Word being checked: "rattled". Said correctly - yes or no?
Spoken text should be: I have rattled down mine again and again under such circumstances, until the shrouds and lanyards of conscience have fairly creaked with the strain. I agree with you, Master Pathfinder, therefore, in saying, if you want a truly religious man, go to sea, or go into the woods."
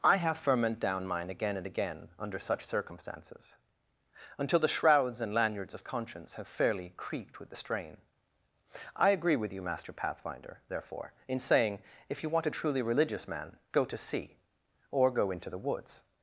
no